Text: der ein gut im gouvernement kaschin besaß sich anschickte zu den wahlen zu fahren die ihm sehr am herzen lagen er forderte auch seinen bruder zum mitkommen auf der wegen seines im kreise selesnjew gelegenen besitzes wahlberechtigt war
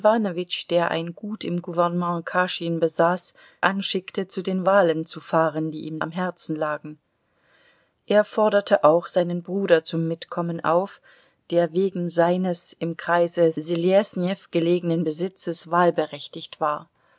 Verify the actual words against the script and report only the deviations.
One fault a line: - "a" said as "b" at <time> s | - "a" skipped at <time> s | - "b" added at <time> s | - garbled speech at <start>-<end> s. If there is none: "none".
- "sich" skipped at 3.4 s
- "sehr" skipped at 6.0 s